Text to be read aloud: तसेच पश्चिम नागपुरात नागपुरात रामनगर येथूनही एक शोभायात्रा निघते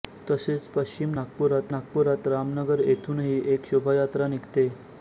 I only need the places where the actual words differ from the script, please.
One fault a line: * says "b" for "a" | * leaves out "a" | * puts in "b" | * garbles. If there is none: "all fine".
all fine